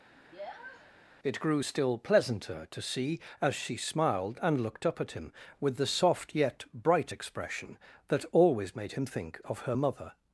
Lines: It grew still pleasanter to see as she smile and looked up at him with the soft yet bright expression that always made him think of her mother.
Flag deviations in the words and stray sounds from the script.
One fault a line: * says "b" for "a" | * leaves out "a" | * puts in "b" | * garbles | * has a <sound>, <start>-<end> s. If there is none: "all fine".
* has a sniff, 0.2-0.9 s
* says "smiled" for "smile"